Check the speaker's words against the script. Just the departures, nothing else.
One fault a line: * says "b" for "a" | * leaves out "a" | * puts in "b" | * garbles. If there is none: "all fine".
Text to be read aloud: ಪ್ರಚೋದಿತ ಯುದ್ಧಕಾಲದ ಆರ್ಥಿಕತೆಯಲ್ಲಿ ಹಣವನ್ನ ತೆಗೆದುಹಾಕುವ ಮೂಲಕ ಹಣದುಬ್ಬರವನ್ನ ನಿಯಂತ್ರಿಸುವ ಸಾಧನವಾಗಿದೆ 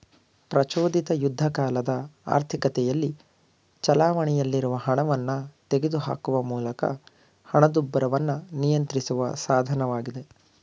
* puts in "ಚಲಾವಣೆಯಲ್ಲಿರುವ"